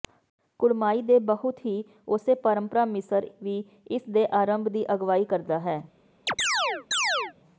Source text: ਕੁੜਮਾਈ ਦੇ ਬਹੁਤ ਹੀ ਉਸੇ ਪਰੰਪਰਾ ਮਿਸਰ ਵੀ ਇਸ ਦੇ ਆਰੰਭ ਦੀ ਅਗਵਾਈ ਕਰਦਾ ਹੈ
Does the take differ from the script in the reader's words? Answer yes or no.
no